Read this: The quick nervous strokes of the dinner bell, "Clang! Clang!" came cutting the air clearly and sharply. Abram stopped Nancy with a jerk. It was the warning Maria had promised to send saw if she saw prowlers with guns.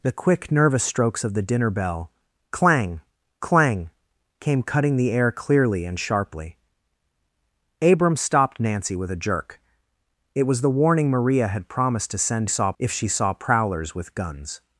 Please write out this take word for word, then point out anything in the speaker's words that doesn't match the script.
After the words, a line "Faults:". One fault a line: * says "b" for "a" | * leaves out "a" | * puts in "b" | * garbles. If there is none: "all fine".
The quick nervous strokes of the dinner bell, "Clang! Clang!" came cutting the air clearly and sharply. Abram stopped Nancy with a jerk. It was the warning Maria had promised to send saw if she saw prowlers with guns.
Faults:
all fine